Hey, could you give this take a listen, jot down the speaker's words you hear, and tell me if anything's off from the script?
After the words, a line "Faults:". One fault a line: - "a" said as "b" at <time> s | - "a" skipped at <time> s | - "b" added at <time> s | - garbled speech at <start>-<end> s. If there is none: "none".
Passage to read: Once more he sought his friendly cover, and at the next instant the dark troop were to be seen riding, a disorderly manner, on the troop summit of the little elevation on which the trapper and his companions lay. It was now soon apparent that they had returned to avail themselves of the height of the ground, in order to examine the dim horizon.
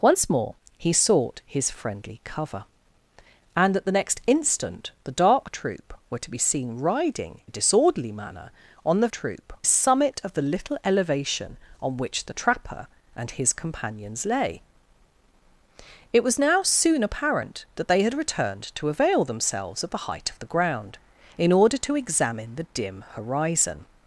Once more he sought his friendly cover, and at the next instant the dark troop were to be seen riding, a disorderly manner, on the troop summit of the little elevation on which the trapper and his companions lay. It was now soon apparent that they had returned to avail themselves of the height of the ground, in order to examine the dim horizon.
Faults:
none